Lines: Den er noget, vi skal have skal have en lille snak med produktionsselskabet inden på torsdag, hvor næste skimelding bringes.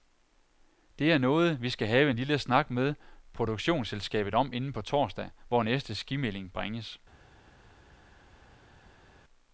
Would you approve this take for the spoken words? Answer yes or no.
no